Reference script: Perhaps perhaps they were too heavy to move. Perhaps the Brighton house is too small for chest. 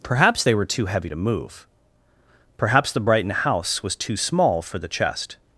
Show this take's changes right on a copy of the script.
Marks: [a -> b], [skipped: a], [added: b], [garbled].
Perhaps [skipped: perhaps] they were too heavy to move. Perhaps the Brighton house [is -> was] too small for [added: the] chest.